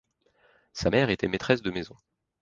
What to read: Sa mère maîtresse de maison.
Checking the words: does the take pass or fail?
fail